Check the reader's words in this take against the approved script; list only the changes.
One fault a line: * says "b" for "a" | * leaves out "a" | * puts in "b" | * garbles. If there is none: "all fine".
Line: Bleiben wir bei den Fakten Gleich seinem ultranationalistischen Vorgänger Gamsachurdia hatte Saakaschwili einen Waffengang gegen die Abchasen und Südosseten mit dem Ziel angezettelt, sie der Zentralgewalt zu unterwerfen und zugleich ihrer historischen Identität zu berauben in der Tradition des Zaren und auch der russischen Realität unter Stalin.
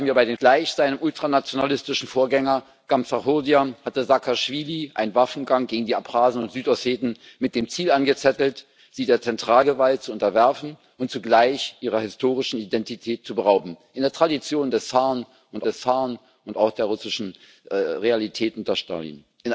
* leaves out "Fakten"
* puts in "des Zaren und"